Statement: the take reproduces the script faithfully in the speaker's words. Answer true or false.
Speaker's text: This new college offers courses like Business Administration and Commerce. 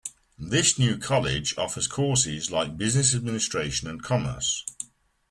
true